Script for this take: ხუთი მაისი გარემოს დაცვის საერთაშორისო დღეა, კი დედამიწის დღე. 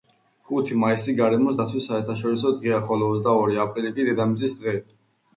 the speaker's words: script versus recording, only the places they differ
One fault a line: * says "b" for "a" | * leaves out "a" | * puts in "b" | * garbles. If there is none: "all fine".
* puts in "ხოლო ოცდაორი აპრილი"